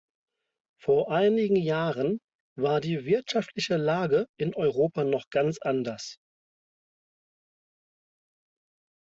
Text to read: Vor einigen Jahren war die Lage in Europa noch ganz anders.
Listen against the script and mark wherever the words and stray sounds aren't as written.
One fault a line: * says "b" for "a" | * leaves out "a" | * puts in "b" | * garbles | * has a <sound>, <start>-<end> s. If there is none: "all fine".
* puts in "wirtschaftliche"